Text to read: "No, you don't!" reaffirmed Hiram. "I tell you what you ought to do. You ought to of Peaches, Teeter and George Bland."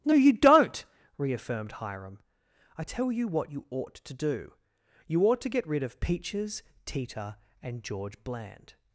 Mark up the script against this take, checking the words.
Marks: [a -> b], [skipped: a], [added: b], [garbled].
"No, you don't!" reaffirmed Hiram. "I tell you what you ought to do. You ought to [added: get rid] of Peaches, Teeter and George Bland."